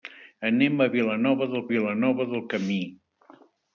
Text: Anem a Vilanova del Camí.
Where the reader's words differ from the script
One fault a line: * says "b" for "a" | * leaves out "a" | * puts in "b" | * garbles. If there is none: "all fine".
* puts in "Vilanova del"